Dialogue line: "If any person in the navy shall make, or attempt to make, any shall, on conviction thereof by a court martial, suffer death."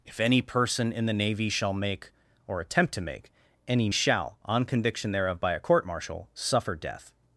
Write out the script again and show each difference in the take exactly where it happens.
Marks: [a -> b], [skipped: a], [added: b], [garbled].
"If any person in the navy shall make, or attempt to make, any shall, on conviction thereof by a court martial, suffer death."